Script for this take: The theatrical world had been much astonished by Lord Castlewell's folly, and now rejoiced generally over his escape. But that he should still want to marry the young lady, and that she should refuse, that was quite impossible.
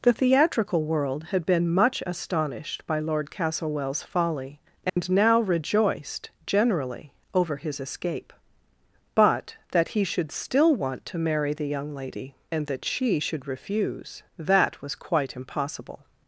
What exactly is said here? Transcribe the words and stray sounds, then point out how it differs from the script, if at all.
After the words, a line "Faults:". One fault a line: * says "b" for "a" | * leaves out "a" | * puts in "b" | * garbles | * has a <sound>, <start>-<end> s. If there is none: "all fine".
The theatrical world had been much astonished by Lord Castlewell's folly, and now rejoiced generally over his escape. But that he should still want to marry the young lady, and that she should refuse, that was quite impossible.
Faults:
* has a dropout, 4.9-5.0 s